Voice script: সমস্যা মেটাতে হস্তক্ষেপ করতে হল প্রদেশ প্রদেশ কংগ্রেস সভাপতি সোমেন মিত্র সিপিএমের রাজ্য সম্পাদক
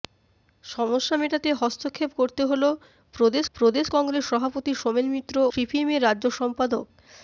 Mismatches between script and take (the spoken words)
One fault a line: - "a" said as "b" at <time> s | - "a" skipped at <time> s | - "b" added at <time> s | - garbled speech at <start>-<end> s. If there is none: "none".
none